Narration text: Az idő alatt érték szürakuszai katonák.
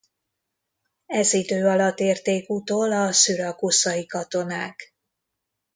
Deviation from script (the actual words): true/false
true